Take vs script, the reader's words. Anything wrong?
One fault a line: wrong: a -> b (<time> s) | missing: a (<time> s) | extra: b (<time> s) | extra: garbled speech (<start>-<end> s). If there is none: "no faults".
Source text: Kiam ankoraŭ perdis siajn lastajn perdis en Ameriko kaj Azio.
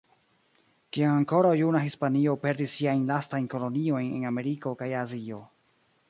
extra: juna Hispanio (1.6 s)
wrong: perdis -> koloniojn (3.5 s)